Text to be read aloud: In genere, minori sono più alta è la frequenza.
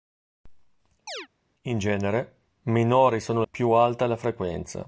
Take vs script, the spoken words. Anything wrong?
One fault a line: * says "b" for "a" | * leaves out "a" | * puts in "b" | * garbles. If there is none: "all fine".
all fine